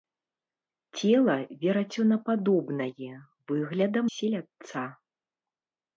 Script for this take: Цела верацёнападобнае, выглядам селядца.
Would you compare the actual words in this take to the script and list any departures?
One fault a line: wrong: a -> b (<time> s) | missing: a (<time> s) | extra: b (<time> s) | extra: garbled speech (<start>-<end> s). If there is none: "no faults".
no faults